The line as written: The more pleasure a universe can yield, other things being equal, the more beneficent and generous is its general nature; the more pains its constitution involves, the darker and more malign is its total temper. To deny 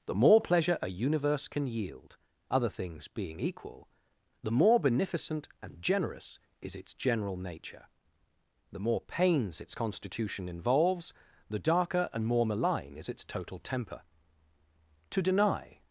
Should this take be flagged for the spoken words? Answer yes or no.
no